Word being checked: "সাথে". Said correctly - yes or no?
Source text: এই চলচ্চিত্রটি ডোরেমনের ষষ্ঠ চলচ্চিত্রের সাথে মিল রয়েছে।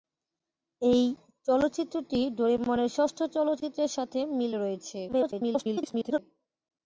yes